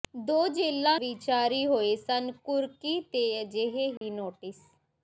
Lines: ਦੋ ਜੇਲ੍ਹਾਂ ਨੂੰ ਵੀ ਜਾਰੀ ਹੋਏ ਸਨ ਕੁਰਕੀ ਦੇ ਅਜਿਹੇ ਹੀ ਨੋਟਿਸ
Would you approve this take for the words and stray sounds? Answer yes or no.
no